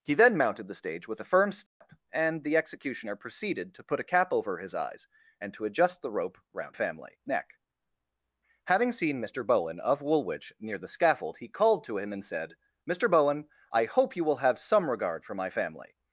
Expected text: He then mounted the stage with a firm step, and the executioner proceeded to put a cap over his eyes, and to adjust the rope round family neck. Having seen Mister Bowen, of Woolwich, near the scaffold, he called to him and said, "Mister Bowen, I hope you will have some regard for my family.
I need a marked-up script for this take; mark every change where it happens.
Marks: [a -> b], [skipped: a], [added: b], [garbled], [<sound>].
He then mounted the stage with a firm step, [dropout] and the executioner proceeded to put a cap over his eyes, and to adjust the rope round family neck. Having seen Mister Bowen, of Woolwich, near the scaffold, he called to him and said, "Mister Bowen, I hope you will have some regard for my family.